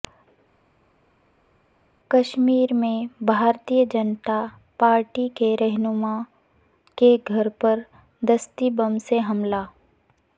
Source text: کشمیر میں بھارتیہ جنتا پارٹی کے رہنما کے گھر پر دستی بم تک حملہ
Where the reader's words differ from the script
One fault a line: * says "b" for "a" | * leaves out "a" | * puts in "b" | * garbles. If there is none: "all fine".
* says "سے" for "تک"